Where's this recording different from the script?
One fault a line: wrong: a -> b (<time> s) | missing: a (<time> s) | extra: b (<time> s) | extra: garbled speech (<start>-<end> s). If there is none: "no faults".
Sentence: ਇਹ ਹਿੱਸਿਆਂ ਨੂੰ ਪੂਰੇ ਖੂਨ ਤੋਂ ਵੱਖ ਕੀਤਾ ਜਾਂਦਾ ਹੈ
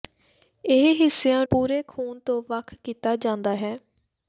missing: ਨੂੰ (1.4 s)